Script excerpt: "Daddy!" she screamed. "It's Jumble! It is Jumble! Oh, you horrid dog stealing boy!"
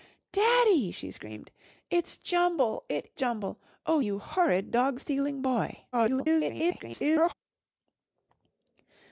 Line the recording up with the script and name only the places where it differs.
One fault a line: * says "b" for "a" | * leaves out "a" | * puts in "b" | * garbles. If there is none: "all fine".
* leaves out "is"
* garbles